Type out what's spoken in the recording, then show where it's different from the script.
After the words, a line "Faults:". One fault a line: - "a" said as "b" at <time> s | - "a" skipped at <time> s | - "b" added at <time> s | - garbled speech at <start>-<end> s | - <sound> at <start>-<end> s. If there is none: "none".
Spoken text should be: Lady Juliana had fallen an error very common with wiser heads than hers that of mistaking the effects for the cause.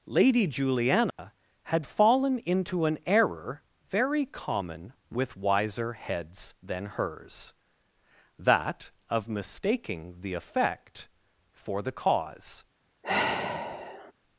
Lady Juliana had fallen into an error very common with wiser heads than hers that of mistaking the effect for the cause.
Faults:
- dropout at 1.1-1.2 s
- "into" added at 2.4 s
- "effects" said as "effect" at 10.3 s
- sigh at 13.0-14.1 s